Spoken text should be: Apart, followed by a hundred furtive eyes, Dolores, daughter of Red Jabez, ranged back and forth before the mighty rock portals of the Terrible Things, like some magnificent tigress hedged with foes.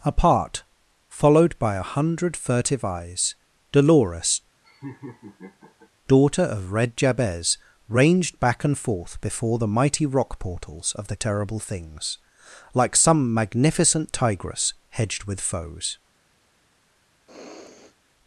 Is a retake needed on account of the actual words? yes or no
no